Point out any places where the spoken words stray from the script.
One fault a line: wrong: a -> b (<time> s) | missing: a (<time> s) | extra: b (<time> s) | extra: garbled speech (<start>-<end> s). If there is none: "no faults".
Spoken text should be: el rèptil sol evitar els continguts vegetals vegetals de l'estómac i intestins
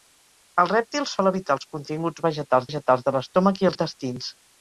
no faults